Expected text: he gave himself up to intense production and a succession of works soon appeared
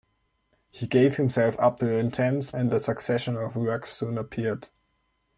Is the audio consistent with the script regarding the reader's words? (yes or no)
no